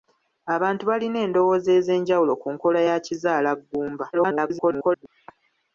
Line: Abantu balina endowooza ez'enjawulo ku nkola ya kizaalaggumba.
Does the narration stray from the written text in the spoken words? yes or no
yes